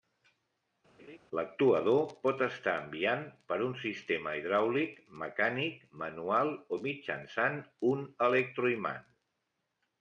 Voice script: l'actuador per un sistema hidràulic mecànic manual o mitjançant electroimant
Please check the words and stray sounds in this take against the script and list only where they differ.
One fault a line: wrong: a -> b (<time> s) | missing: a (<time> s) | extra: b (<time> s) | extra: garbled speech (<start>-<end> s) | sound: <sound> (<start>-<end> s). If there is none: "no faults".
sound: laugh (1.0-1.2 s)
extra: pot estar enviant (2.3 s)
extra: un (7.9 s)